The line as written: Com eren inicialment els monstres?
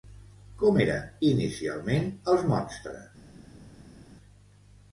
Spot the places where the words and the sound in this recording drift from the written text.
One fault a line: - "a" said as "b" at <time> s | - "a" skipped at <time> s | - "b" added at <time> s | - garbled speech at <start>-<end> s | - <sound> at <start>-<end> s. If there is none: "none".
none